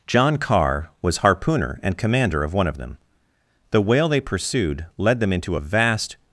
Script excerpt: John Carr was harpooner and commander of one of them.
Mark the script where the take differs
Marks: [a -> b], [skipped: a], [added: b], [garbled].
John Carr was harpooner and commander of one of them. [added: The whale they pursued led them into a vast]